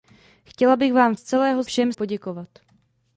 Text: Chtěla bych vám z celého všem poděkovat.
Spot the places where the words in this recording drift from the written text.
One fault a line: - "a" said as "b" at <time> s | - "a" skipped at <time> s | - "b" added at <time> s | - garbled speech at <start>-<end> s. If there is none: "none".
none